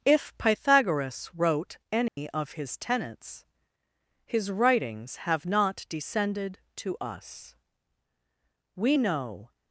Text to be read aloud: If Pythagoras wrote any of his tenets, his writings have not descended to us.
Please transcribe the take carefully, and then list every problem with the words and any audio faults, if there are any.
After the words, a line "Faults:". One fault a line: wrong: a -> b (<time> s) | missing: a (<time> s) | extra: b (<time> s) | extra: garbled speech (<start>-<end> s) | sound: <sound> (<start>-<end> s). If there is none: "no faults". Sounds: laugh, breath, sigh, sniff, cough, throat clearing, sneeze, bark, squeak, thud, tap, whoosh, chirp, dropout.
If Pythagoras wrote any of his tenets, his writings have not descended to us. We know
Faults:
sound: dropout (2.1-2.2 s)
extra: We know (8.8 s)